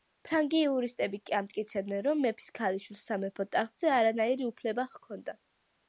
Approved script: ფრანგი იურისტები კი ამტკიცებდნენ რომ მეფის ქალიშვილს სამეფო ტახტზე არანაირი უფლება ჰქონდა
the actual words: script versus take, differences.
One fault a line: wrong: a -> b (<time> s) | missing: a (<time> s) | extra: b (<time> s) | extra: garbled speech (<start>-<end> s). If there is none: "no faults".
no faults